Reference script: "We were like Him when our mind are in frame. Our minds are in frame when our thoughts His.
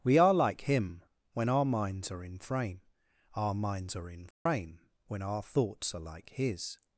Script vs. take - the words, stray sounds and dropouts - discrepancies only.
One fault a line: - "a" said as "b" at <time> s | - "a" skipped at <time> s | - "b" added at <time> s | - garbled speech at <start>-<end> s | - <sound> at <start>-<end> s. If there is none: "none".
- "were" said as "are" at 0.2 s
- "mind" said as "minds" at 1.6 s
- dropout at 4.3-4.5 s
- "are like" added at 5.9 s